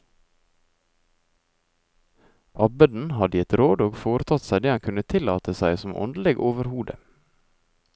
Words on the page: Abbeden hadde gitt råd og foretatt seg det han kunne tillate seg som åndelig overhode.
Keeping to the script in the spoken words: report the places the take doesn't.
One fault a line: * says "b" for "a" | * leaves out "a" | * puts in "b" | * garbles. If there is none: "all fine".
all fine